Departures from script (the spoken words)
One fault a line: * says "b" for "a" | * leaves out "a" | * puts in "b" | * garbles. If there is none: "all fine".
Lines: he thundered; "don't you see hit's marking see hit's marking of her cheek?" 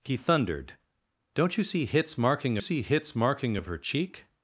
all fine